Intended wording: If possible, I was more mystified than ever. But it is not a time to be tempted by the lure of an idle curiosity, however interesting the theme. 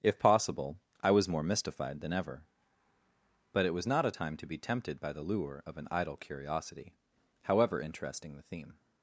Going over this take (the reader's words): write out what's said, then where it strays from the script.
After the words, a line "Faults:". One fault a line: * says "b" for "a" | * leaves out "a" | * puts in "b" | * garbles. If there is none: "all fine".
If possible, I was more mystified than ever. But it was not a time to be tempted by the lure of an idle curiosity, however interesting the theme.
Faults:
* says "was" for "is"